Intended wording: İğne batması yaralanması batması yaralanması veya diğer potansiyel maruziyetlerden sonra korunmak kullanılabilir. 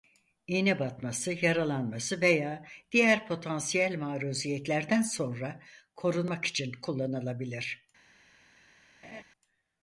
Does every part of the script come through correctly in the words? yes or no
no